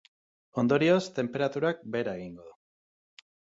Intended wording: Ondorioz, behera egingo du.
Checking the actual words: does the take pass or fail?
fail